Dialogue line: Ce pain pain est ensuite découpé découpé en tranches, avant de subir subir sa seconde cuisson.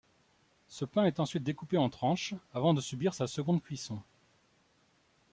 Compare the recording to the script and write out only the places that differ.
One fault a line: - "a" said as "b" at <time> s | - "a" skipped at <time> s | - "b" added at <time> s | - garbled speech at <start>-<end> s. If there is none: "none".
- "pain" skipped at 1.1 s
- "découpé" skipped at 1.8 s
- "subir" skipped at 3.1 s